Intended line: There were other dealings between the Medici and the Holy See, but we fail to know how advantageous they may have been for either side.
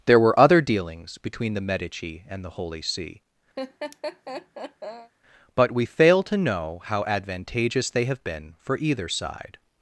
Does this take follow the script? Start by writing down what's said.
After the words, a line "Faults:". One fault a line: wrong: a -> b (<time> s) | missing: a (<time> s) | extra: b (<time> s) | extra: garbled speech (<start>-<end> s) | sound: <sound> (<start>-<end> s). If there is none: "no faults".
There were other dealings between the Medici and the Holy See, but we fail to know how advantageous they have been for either side.
Faults:
sound: laugh (3.6-5.1 s)
missing: may (8.0 s)